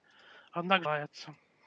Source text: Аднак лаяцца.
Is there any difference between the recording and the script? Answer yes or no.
no